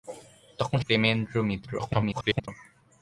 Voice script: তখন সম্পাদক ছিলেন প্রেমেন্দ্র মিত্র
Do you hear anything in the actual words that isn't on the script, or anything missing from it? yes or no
yes